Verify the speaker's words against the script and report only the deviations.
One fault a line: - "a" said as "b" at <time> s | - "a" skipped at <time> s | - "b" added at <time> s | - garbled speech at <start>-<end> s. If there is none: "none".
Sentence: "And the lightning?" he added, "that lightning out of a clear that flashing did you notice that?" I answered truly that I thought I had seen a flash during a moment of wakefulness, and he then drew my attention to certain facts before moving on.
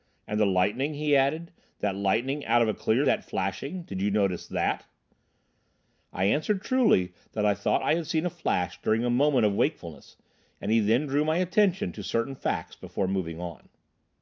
none